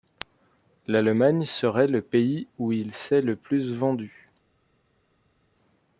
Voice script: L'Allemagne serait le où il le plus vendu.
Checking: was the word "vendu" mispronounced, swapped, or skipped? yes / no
no